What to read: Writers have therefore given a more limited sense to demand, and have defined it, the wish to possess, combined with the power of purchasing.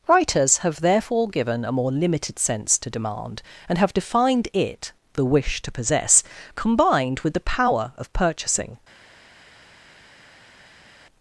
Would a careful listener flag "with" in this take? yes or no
no